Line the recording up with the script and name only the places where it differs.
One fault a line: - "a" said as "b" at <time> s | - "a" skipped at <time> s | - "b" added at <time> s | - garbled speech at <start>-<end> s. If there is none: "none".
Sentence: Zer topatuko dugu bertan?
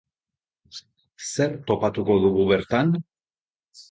none